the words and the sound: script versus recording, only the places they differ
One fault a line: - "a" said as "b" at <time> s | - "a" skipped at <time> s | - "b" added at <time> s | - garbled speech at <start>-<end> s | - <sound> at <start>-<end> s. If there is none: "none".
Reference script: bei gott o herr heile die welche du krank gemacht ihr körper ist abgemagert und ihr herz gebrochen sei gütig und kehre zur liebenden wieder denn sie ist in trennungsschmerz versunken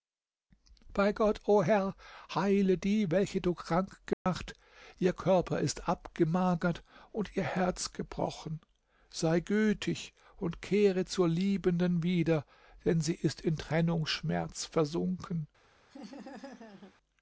- dropout at 4.1-4.3 s
- laugh at 15.9-16.9 s